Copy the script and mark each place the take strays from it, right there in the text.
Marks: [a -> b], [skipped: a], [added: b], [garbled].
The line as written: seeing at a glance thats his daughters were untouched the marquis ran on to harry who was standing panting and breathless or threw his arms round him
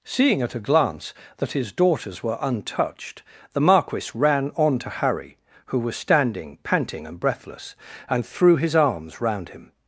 seeing at a glance [thats -> that] his daughters were untouched the marquis ran on to harry who was standing panting and breathless [or -> and] threw his arms round him